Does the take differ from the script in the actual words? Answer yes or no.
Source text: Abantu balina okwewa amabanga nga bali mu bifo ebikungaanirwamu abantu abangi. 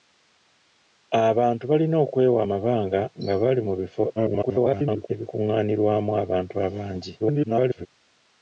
yes